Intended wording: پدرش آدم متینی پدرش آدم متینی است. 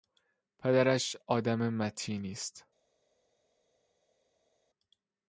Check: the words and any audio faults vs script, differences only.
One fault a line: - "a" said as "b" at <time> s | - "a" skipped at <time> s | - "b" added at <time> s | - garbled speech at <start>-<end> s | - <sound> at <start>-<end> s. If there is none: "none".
- "پدرش آدم متینی" skipped at 2.3 s